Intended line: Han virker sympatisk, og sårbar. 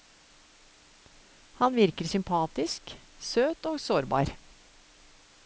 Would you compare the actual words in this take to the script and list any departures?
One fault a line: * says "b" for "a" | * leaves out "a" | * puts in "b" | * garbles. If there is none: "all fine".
* puts in "søt"